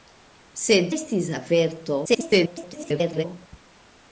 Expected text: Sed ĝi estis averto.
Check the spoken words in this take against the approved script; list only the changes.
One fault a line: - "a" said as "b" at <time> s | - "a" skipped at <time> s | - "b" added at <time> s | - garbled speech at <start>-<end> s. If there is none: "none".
- "ĝi" skipped at 0.9 s
- garbled speech at 2.0-3.2 s